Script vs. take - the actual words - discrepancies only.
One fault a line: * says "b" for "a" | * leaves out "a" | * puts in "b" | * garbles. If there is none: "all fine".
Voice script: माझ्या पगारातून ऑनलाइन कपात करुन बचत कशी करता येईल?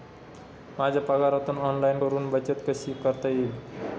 * leaves out "कपात"